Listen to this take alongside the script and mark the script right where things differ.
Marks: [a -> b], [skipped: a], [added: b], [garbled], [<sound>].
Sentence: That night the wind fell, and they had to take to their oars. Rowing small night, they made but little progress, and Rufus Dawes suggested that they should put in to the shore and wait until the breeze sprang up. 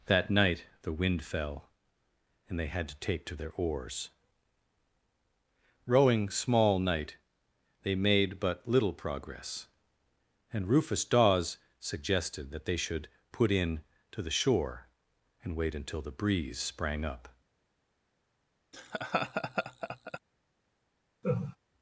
That night the wind fell, and they had to take to their oars. Rowing small night, they made but little progress, and Rufus Dawes suggested that they should put in to the shore and wait until the breeze sprang up. [laugh] [laugh]